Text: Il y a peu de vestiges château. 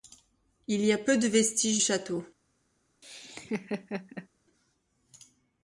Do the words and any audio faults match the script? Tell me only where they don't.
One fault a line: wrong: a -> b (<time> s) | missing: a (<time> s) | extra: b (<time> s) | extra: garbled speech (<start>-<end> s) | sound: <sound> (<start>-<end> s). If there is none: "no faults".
sound: laugh (3.0-4.3 s)